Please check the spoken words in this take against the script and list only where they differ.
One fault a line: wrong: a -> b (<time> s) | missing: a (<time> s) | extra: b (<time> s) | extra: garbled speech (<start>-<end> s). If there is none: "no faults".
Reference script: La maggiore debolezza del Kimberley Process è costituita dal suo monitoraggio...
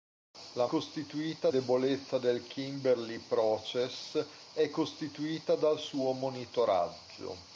wrong: maggiore -> costituita (0.6 s)